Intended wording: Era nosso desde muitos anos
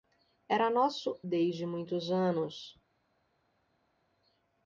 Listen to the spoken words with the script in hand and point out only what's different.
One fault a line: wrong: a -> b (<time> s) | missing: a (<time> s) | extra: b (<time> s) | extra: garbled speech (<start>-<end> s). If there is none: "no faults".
no faults